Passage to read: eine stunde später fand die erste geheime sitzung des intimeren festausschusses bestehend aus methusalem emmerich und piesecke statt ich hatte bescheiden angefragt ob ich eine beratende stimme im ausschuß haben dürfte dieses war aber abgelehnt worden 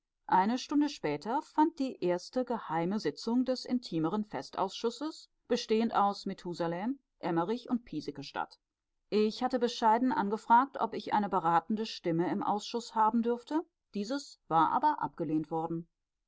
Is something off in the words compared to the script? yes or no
no